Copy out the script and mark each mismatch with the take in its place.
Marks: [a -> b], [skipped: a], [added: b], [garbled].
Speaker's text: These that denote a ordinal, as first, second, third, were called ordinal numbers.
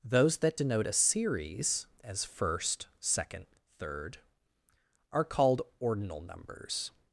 [These -> Those] that denote a [ordinal, -> series] as first, second, third, [were -> are] called ordinal numbers.